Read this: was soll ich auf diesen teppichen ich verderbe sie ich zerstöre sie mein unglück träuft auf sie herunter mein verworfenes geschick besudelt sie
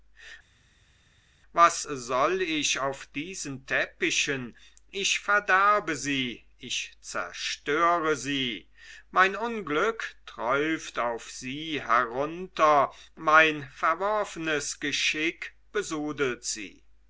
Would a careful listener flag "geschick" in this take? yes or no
no